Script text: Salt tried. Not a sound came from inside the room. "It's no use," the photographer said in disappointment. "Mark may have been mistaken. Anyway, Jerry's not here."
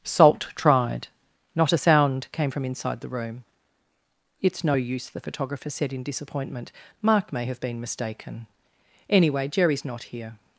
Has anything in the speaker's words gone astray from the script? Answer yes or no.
no